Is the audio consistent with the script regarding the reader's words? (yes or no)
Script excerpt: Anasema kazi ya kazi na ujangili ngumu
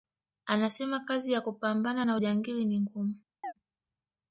no